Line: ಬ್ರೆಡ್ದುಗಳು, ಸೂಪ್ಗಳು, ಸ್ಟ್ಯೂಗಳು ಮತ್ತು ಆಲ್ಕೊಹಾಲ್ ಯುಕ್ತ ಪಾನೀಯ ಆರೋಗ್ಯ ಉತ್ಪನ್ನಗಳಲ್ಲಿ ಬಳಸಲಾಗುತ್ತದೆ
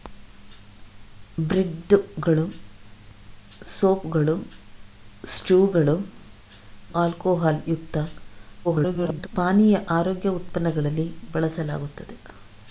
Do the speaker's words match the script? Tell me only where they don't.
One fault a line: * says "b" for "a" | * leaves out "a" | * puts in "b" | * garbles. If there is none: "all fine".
* leaves out "ಮತ್ತು"
* garbles